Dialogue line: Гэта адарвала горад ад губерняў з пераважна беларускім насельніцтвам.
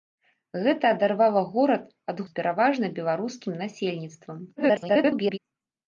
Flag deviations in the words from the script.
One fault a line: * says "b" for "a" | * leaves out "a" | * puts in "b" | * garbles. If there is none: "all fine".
* leaves out "губерняў"
* garbles